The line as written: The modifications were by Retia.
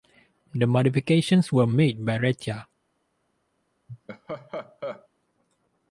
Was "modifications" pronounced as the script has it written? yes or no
yes